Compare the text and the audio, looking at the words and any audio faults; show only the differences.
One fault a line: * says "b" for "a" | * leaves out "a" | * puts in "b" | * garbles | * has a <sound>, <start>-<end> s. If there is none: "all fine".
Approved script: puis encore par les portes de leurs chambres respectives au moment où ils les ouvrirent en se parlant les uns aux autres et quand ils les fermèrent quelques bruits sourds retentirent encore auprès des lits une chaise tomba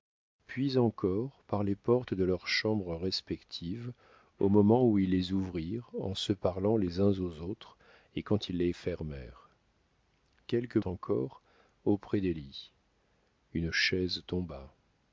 * leaves out "bruits sourds retentirent"